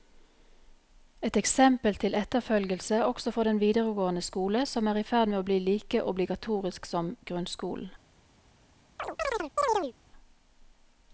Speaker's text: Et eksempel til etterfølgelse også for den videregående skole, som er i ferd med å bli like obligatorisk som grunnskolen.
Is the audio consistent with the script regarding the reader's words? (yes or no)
yes